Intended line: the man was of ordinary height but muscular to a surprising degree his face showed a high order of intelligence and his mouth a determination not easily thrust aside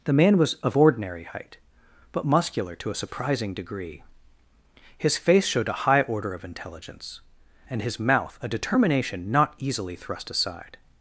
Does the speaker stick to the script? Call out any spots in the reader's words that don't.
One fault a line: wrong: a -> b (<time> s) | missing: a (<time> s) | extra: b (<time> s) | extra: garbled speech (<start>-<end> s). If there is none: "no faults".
no faults